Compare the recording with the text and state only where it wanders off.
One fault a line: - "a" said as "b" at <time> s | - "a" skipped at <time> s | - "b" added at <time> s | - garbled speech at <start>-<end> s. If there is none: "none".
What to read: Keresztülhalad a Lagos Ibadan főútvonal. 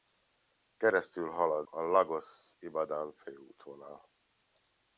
none